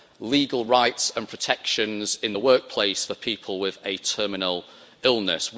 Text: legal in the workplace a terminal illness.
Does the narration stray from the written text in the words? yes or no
yes